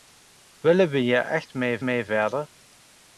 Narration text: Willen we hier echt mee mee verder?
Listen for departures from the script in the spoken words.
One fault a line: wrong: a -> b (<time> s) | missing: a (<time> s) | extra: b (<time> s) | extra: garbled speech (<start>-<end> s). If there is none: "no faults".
no faults